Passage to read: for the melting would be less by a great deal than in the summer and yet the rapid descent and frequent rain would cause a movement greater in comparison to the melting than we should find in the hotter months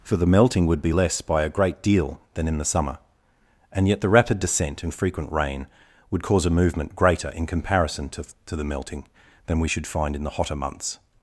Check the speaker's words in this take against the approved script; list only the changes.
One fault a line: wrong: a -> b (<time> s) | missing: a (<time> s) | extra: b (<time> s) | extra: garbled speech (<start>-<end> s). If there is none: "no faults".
extra: to (8.4 s)